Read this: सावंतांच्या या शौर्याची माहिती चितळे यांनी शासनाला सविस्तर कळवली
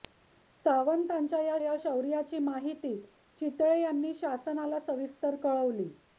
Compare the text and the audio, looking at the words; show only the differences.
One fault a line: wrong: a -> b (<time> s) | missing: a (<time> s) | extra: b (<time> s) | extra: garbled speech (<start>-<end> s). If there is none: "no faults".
extra: या (1.6 s)